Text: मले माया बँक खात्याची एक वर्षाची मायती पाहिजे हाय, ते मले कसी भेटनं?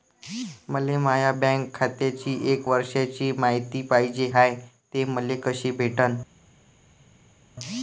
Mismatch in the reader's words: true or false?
false